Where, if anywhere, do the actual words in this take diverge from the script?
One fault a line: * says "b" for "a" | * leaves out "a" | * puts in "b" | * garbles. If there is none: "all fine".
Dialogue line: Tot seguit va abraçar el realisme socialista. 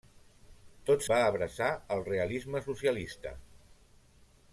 * leaves out "seguit"